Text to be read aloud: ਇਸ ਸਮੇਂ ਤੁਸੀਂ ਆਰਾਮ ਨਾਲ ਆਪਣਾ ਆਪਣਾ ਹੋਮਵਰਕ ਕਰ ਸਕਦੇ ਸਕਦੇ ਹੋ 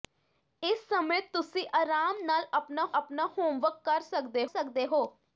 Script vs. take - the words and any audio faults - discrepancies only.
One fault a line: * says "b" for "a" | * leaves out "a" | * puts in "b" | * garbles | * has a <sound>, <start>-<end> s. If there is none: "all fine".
all fine